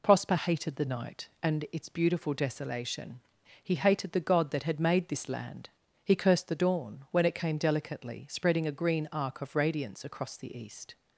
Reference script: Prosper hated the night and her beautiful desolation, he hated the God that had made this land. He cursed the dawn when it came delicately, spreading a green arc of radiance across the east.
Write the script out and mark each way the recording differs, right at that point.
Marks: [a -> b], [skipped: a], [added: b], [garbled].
Prosper hated the night and [her -> its] beautiful desolation, he hated the God that had made this land. He cursed the dawn when it came delicately, spreading a green arc of radiance across the east.